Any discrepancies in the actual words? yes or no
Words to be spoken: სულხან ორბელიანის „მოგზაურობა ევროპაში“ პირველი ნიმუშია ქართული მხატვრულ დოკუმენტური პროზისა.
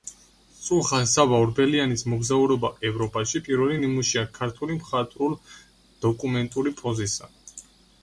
yes